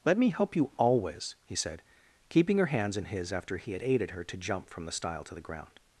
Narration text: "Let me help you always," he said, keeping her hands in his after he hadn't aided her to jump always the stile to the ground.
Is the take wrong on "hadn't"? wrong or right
wrong